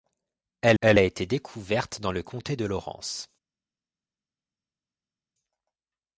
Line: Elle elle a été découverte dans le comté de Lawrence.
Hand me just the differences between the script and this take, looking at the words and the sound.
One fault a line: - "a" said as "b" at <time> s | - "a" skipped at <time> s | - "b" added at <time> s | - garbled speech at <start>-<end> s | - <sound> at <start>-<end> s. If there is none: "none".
none